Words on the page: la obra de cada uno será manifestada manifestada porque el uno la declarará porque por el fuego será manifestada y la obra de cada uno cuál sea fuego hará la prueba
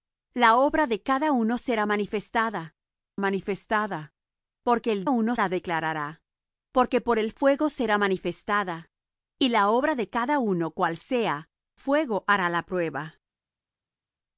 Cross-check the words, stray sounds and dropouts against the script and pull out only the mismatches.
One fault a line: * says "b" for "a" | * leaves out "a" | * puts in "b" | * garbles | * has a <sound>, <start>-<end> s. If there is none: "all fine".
all fine